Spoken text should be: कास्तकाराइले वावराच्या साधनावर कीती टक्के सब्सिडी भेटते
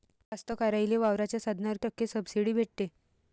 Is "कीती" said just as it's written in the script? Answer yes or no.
no